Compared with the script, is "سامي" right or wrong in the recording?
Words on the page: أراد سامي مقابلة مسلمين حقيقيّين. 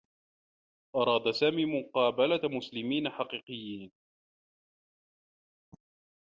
right